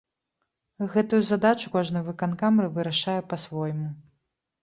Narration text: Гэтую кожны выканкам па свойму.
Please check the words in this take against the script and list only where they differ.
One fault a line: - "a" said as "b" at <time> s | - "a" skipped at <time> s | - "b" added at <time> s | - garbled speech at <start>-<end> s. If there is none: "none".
- "задачу" added at 1.3 s
- "вырашае" added at 2.7 s